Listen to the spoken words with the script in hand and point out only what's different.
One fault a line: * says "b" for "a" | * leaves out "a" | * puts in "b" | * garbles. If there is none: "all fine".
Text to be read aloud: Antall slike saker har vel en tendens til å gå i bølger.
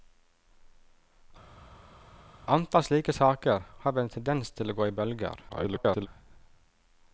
* garbles